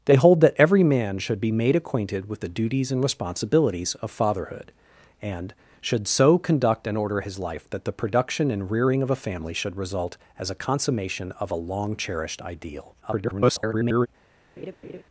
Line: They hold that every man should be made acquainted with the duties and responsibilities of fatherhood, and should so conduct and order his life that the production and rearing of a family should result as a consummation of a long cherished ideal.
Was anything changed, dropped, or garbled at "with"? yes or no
no